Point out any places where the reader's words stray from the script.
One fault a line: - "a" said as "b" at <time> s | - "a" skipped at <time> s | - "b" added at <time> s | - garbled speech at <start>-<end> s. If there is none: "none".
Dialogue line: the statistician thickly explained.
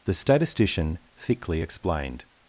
none